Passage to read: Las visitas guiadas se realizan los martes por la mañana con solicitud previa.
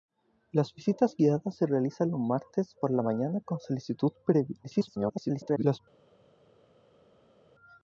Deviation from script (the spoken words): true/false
true